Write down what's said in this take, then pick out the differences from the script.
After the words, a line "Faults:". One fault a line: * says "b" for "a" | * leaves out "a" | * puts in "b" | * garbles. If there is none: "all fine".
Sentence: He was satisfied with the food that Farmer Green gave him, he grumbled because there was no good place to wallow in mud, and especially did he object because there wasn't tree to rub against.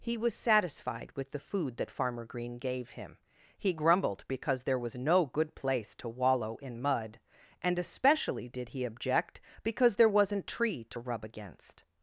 He was satisfied with the food that Farmer Green gave him, he grumbled because there was no good place to wallow in mud, and especially did he object because there wasn't tree to rub against.
Faults:
all fine